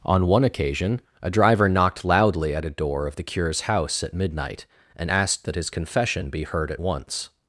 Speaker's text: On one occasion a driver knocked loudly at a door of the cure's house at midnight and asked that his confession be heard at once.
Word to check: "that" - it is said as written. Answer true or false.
true